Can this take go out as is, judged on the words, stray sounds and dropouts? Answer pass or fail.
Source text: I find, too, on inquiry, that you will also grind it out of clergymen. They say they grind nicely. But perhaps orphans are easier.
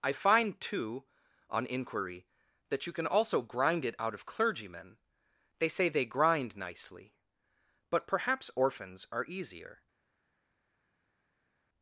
fail